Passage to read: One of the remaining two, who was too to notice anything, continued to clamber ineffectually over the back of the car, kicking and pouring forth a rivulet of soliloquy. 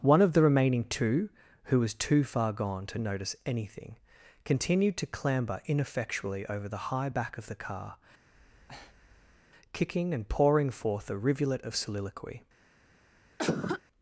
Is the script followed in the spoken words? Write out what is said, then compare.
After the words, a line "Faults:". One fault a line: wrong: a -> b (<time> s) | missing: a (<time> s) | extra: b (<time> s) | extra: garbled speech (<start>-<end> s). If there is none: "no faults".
One of the remaining two, who was too far gone to notice anything, continued to clamber ineffectually over the high back of the car, kicking and pouring forth a rivulet of soliloquy.
Faults:
extra: far gone (2.2 s)
extra: high (6.9 s)